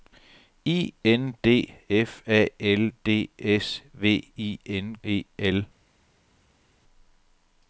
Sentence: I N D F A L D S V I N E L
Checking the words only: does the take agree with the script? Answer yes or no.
yes